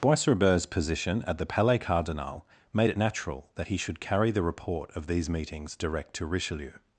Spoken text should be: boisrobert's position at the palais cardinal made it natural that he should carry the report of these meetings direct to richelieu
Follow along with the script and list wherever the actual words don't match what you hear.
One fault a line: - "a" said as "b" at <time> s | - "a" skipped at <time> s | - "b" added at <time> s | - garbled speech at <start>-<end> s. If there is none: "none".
none